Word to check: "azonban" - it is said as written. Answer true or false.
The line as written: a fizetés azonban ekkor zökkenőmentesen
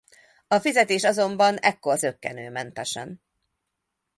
true